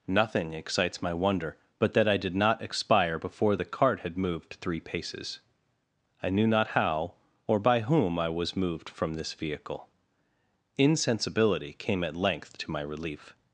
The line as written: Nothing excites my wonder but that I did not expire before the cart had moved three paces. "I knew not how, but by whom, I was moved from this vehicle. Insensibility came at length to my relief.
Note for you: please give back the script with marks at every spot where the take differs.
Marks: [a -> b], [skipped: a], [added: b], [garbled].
Nothing excites my wonder but that I did not expire before the cart had moved three paces. "I knew not how, [but -> or] by whom, I was moved from this vehicle. Insensibility came at length to my relief.